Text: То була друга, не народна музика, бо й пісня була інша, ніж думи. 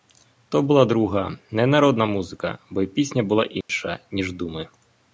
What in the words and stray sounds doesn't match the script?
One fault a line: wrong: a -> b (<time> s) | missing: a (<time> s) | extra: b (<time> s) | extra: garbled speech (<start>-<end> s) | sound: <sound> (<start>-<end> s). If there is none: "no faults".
sound: dropout (3.6-3.7 s)